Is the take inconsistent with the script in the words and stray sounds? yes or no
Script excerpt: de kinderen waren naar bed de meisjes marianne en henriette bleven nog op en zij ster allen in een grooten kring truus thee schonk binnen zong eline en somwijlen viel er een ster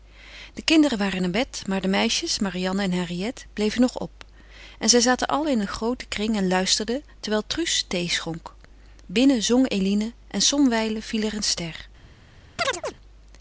yes